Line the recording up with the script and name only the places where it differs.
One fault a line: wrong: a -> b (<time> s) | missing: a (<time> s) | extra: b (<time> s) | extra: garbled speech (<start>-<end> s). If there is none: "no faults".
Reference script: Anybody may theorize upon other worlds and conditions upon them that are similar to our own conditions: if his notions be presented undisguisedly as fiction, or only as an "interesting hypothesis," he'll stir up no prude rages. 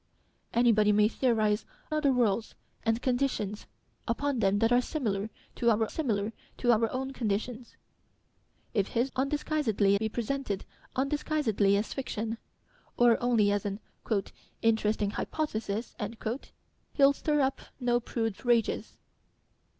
missing: upon (1.6 s)
extra: similar to our (5.9 s)
wrong: notions -> undisguisedly (9.1 s)